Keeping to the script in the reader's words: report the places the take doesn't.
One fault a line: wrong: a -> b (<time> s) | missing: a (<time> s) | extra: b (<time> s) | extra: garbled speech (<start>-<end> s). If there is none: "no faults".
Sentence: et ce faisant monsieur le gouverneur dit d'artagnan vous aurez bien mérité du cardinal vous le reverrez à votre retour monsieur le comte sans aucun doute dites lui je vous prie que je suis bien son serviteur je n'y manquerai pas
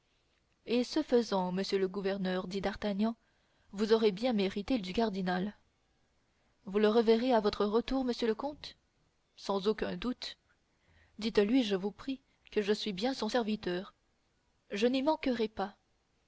no faults